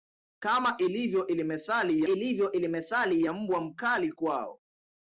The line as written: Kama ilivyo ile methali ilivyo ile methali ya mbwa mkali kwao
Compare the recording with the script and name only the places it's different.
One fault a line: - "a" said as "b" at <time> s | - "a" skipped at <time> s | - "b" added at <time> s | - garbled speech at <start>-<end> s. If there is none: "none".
none